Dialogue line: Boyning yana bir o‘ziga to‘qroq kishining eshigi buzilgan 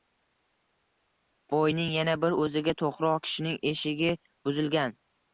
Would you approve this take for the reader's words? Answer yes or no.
yes